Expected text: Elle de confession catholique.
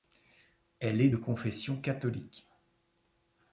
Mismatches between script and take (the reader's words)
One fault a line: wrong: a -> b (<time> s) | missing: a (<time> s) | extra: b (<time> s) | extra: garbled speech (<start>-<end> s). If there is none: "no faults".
extra: est (1.0 s)